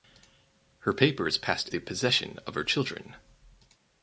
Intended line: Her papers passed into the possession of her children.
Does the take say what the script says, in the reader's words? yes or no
no